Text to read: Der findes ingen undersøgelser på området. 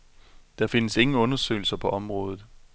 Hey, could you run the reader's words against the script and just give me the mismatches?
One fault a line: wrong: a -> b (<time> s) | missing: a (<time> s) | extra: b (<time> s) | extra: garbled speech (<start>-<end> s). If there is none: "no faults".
no faults